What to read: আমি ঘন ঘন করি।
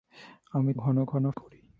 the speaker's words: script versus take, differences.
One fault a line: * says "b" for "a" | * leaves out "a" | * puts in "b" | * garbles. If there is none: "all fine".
all fine